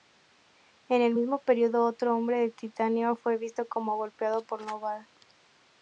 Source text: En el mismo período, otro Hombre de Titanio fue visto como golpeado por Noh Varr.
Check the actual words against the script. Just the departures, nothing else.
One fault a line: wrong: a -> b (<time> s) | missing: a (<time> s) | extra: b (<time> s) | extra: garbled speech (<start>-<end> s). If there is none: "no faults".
no faults